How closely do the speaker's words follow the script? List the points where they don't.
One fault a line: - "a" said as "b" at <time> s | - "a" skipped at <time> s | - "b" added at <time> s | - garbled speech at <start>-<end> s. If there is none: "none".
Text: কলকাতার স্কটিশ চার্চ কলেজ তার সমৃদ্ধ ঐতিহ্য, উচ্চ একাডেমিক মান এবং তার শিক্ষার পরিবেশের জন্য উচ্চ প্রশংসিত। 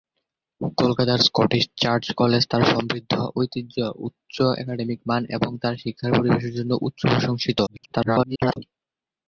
- garbled speech at 7.7-8.6 s